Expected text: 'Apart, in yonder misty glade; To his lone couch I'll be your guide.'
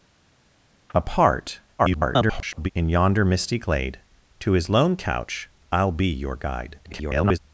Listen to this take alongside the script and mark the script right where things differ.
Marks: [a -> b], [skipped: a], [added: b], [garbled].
'Apart, [garbled] in yonder misty glade; To his lone couch I'll be your guide.' [garbled]